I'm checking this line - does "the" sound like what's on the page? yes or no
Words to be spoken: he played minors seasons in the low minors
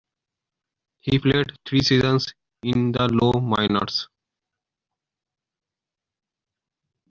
yes